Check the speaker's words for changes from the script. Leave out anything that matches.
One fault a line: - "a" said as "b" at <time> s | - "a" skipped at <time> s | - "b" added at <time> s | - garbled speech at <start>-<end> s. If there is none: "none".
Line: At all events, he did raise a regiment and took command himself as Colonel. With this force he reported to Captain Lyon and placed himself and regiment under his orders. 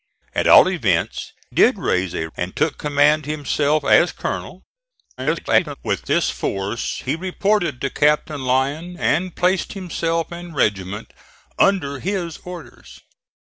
- "he" skipped at 1.3 s
- "regiment" skipped at 2.3 s
- garbled speech at 5.2-5.8 s